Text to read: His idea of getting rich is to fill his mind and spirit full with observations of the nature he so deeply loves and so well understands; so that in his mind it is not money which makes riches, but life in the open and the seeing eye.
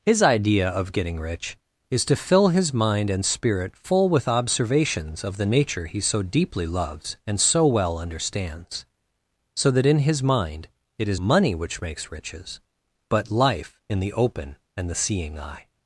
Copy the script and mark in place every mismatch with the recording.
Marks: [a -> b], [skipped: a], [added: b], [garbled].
His idea of getting rich is to fill his mind and spirit full with observations of the nature he so deeply loves and so well understands; so that in his mind it is [skipped: not] money which makes riches, but life in the open and the seeing eye.